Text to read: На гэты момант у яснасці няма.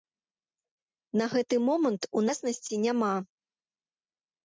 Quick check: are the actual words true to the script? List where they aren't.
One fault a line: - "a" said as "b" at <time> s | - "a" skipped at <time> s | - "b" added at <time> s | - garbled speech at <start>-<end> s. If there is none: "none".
none